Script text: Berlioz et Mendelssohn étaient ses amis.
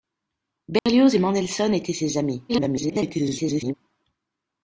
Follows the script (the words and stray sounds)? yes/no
no